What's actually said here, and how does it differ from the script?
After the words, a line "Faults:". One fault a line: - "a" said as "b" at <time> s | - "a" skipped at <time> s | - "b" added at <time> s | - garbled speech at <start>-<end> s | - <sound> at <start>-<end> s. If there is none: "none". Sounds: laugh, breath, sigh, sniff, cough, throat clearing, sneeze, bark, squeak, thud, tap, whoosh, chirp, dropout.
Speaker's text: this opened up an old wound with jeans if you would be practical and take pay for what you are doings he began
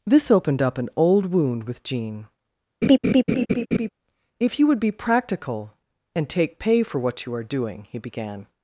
this opened up an old wound with jean if you would be practical and take pay for what you are doing he began
Faults:
- "jeans" said as "jean" at 1.8 s
- laugh at 2.8-3.9 s
- "doings" said as "doing" at 7.4 s